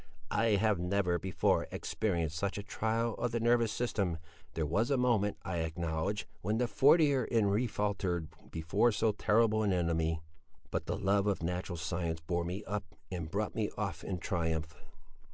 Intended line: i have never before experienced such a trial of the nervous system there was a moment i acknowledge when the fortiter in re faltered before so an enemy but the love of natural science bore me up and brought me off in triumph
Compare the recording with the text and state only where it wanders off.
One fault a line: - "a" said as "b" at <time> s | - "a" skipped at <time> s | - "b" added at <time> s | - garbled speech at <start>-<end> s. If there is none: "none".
- "terrible" added at 9.1 s